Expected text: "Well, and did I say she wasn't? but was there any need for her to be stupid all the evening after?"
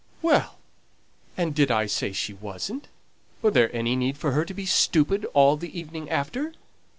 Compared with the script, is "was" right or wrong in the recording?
wrong